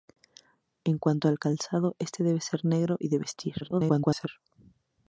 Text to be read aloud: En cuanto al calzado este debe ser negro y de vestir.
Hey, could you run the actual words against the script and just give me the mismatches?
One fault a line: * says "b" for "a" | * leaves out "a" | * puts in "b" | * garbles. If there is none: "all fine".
* garbles